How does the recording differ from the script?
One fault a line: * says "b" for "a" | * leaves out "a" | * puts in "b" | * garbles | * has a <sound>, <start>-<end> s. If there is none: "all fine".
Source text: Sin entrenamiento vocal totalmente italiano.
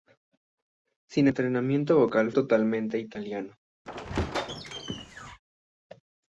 * has a squeak, 3.9-5.4 s